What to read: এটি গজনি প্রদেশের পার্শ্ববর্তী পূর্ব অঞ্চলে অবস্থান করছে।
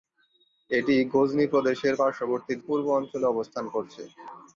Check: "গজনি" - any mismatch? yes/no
no